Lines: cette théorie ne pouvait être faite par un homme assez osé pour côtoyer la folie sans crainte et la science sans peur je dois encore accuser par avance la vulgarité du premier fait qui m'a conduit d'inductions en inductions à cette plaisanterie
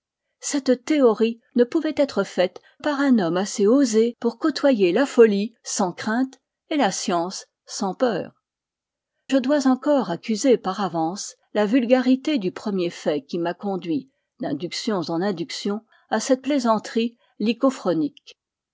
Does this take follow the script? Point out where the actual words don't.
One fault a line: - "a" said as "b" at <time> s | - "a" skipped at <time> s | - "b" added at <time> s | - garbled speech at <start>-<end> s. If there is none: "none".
none